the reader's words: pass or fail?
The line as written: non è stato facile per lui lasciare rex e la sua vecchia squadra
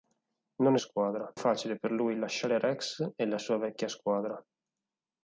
fail